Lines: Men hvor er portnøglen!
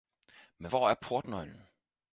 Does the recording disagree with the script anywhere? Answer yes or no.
no